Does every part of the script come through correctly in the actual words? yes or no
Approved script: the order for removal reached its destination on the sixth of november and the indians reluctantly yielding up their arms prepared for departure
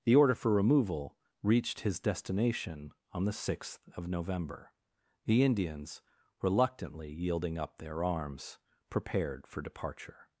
no